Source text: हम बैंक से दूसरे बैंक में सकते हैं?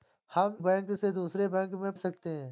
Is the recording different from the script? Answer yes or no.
no